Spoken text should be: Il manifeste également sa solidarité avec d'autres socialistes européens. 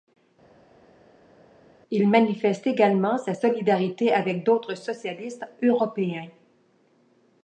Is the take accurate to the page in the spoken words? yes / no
yes